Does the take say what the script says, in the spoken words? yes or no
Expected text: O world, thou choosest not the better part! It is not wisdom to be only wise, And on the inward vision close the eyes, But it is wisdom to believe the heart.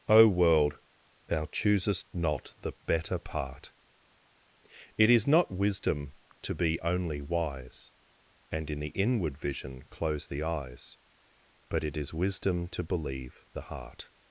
no